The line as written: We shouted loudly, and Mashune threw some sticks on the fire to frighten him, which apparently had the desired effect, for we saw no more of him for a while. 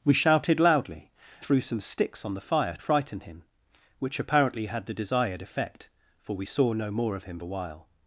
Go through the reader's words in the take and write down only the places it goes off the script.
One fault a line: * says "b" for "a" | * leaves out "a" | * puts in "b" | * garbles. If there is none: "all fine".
* leaves out "and Mashune"
* leaves out "to"
* leaves out "for"